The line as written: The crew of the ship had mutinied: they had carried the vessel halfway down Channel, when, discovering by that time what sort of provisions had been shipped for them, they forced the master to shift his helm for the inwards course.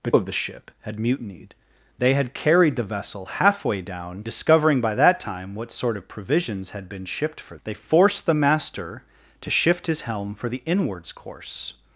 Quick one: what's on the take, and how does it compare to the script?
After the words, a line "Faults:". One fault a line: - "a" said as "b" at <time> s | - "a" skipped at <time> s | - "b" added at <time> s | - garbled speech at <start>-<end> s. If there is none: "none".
The of the ship had mutinied: they had carried the vessel halfway down Discovering by that time what sort of provisions had been shipped for they forced the master to shift his helm for the inwards course.
Faults:
- "crew" skipped at 0.1 s
- "Channel when" skipped at 4.2 s
- "them" skipped at 7.6 s